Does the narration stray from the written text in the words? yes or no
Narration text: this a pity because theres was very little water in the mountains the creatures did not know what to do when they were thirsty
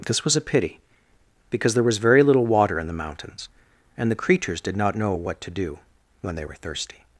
yes